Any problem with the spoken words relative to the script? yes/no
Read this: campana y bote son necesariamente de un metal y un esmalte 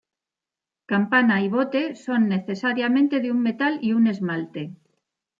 no